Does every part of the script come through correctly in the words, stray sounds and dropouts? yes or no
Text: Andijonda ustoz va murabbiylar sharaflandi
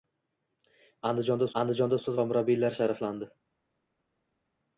no